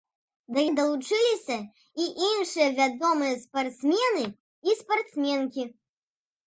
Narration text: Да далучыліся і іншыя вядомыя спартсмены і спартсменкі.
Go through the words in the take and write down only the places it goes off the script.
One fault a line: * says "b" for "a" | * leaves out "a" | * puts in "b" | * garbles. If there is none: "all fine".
all fine